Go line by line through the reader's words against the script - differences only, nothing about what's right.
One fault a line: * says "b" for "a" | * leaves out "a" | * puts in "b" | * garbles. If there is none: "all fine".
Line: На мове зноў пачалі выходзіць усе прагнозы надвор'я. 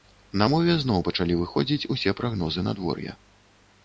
all fine